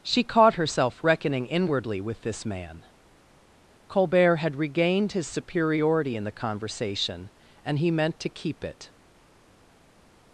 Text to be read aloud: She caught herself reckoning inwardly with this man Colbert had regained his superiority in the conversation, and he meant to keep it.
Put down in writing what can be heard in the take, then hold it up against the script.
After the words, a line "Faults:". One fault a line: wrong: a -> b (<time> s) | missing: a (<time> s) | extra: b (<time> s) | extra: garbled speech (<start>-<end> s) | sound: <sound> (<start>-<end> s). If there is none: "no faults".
She caught herself reckoning inwardly with this man Colbert had regained his superiority in the conversation, and he meant to keep it.
Faults:
no faults